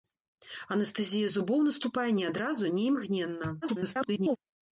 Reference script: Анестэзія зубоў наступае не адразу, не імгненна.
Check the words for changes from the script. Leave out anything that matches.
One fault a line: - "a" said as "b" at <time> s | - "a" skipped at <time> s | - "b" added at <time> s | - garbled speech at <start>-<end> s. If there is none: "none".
- garbled speech at 3.6-4.4 s